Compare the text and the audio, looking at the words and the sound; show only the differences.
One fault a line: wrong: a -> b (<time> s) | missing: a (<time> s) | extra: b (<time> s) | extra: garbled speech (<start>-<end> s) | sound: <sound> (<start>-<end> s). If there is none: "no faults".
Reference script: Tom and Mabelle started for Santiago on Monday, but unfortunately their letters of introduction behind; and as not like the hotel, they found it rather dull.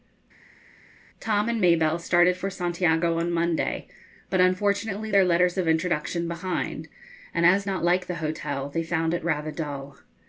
no faults